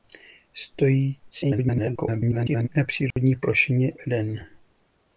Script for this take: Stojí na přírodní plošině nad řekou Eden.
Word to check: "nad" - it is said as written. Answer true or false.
false